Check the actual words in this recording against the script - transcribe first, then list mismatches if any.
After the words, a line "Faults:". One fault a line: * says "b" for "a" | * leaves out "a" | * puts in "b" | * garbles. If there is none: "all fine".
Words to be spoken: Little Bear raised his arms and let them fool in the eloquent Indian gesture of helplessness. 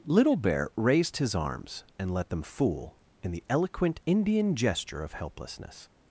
Little Bear raised his arms and let them fool in the eloquent Indian gesture of helplessness.
Faults:
all fine